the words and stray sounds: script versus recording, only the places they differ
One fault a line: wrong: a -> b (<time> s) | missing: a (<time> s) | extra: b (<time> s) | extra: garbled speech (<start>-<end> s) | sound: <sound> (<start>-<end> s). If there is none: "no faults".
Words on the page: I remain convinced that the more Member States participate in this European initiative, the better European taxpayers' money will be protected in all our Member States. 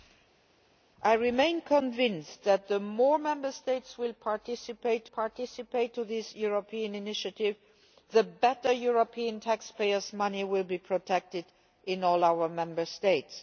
extra: participate (5.1 s)